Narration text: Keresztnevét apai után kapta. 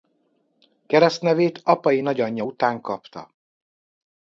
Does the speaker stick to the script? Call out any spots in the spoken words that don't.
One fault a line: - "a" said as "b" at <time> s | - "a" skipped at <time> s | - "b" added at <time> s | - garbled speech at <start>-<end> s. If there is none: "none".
- "nagyanyja" added at 2.0 s